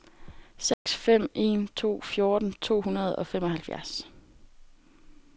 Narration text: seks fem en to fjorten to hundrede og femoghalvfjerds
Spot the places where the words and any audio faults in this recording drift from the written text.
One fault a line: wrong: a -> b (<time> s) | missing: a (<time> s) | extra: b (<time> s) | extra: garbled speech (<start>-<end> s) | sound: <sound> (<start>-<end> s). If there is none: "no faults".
sound: dropout (0.7-0.9 s)